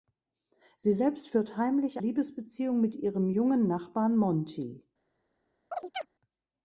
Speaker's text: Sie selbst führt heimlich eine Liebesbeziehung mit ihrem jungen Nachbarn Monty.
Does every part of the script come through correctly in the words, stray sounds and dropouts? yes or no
no